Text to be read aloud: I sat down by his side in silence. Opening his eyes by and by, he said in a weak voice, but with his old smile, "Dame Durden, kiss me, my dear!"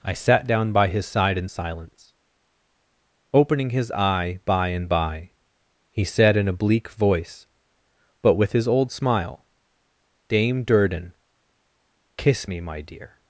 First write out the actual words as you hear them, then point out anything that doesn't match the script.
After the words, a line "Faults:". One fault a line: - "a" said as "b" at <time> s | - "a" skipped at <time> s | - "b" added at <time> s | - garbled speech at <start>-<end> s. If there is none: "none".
I sat down by his side in silence. Opening his eye by and by, he said in a bleak voice, but with his old smile, "Dame Durden, kiss me, my dear!"
Faults:
- "eyes" said as "eye" at 3.9 s
- "weak" said as "bleak" at 6.5 s